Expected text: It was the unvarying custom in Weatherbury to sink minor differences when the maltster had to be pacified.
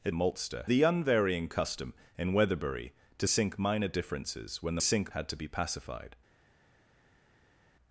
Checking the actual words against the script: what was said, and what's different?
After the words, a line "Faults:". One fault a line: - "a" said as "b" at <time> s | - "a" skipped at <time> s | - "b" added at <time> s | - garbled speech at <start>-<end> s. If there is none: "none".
It maltster the unvarying custom in Weatherbury to sink minor differences when the sink had to be pacified.
Faults:
- "was" said as "maltster" at 0.1 s
- "maltster" said as "sink" at 4.8 s